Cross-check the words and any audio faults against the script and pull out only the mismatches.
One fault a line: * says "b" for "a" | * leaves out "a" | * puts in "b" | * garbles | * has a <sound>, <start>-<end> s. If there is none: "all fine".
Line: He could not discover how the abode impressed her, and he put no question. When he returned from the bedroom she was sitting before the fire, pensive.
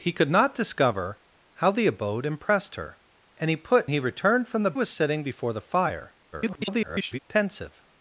* leaves out "no question When"
* leaves out "bedroom she"
* garbles